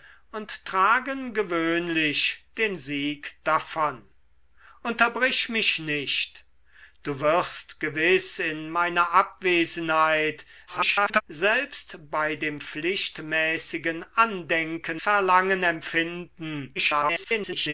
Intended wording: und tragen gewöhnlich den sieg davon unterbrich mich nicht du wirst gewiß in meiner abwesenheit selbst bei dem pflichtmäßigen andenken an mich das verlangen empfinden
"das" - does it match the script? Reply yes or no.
no